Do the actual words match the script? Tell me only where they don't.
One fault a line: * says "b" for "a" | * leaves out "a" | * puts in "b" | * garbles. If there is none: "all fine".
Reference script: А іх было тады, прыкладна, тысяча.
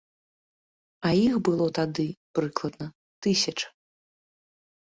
all fine